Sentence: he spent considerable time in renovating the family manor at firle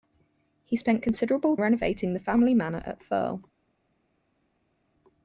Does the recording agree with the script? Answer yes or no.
no